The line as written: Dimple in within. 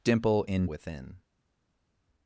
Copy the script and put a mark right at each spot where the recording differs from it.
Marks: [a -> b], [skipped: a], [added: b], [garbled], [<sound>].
Dimple in within.